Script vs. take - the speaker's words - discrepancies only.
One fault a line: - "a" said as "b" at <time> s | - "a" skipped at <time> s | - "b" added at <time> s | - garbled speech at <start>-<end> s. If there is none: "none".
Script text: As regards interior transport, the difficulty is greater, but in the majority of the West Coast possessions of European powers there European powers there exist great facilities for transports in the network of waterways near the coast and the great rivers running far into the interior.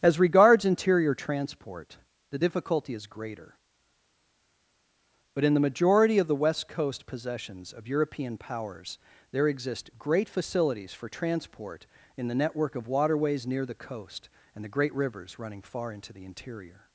- "European powers there" skipped at 9.5 s
- "transports" said as "transport" at 11.1 s